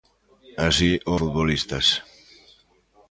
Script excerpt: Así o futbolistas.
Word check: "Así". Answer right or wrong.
right